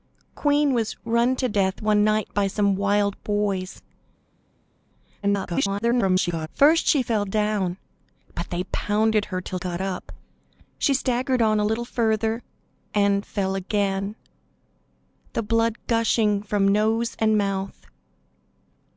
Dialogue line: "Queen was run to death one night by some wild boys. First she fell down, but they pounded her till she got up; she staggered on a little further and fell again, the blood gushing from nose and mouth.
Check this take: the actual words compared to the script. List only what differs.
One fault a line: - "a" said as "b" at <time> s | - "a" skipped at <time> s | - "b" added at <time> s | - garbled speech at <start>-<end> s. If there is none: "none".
- garbled speech at 5.2-6.5 s
- "she" skipped at 9.6 s